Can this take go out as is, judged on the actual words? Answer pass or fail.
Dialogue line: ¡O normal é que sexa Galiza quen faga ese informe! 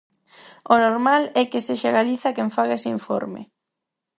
pass